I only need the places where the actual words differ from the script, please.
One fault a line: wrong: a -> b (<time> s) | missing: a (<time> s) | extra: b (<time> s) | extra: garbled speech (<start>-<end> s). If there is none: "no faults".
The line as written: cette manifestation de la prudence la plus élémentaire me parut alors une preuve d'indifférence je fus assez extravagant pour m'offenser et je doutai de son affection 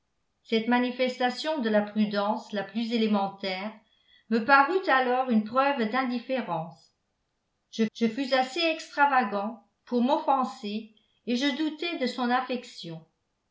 extra: je (7.9 s)